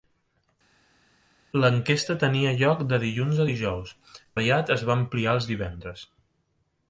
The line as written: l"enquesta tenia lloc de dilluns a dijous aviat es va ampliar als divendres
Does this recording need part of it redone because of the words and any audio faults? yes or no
no